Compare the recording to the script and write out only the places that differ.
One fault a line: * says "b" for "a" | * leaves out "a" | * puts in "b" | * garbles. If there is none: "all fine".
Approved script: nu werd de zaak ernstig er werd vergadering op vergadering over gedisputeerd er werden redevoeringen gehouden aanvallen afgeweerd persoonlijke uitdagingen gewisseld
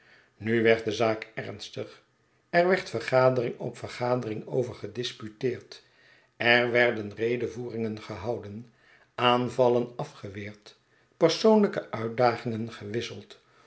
all fine